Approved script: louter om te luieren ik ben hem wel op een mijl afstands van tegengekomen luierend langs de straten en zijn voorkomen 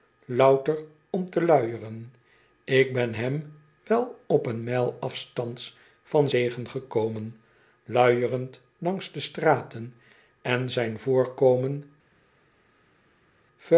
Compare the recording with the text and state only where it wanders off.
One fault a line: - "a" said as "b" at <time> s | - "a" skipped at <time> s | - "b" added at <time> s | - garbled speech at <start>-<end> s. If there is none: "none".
none